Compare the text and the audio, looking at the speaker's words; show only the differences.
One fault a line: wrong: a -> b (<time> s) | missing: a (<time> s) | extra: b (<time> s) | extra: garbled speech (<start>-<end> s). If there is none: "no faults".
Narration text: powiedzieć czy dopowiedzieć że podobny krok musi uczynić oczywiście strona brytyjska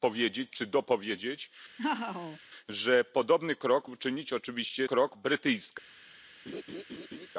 missing: musi (3.9 s)
wrong: strona -> krok (4.8 s)